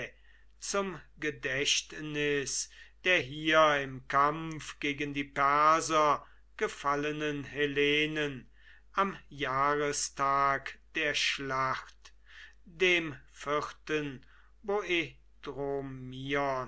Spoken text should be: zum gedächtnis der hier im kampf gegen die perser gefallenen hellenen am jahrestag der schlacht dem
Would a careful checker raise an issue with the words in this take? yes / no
no